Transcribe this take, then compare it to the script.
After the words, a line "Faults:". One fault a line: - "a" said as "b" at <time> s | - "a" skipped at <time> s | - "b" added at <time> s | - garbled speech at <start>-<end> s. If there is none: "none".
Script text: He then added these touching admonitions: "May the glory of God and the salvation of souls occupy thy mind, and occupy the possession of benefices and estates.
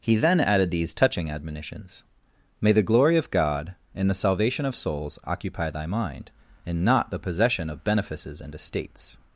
He then added these touching admonitions: "May the glory of God and the salvation of souls occupy thy mind, and not the possession of benefices and estates.
Faults:
- "occupy" said as "not" at 6.8 s